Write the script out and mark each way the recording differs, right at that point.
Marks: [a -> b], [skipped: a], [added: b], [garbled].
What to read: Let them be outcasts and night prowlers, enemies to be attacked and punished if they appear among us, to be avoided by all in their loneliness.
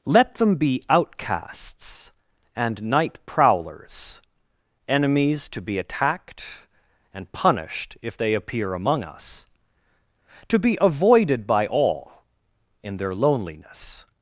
Let them be outcasts and night prowlers, enemies to be attacked and punished if they appear among us, to be avoided by all in their loneliness.